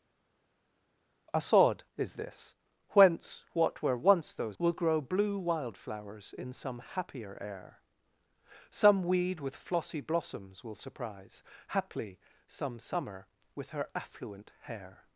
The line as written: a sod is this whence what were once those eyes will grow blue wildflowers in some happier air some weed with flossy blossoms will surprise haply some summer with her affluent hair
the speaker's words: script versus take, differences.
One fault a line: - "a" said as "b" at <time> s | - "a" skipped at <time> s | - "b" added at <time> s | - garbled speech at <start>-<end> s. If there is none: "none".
- "eyes" skipped at 4.6 s